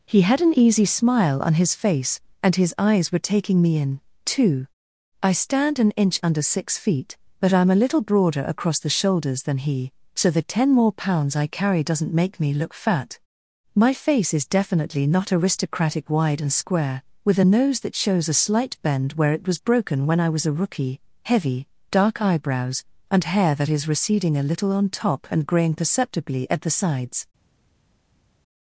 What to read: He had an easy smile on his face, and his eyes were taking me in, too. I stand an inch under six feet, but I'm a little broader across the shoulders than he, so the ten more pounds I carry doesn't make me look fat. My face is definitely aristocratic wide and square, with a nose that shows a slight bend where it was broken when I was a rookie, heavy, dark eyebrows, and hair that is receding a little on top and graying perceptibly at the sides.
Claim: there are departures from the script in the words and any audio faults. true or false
true